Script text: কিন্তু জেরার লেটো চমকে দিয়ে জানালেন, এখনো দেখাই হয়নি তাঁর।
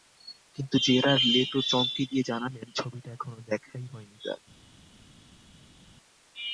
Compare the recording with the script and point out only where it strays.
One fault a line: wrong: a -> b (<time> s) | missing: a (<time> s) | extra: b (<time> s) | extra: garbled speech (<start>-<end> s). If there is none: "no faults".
extra: ছবিটা (2.7 s)